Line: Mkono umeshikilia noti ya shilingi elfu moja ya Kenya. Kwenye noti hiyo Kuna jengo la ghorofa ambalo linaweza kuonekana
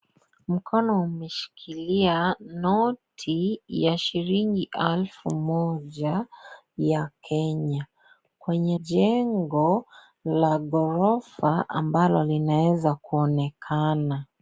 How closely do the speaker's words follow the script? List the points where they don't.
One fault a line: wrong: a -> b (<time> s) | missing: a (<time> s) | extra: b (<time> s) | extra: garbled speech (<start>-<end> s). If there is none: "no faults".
missing: noti hiyo Kuna (8.8 s)